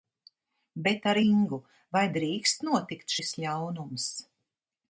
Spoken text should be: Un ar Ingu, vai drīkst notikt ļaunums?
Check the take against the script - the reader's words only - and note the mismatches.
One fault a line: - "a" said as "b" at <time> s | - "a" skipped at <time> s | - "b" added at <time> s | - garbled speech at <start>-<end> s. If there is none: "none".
- "Un" said as "Bet" at 0.9 s
- "šis" added at 3.1 s